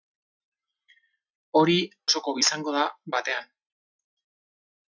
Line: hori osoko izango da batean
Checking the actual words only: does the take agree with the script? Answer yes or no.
yes